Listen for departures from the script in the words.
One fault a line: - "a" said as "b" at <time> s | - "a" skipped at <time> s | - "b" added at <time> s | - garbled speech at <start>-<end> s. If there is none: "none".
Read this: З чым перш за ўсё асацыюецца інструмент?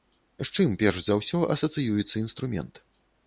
none